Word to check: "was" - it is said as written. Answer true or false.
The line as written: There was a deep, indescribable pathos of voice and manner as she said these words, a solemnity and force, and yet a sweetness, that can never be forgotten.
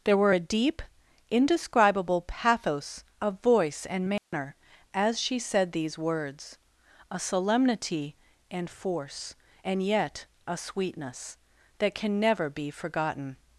false